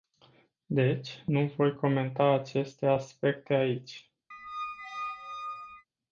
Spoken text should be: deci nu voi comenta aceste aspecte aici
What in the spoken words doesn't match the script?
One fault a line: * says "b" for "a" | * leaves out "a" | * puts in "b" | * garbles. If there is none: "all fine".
all fine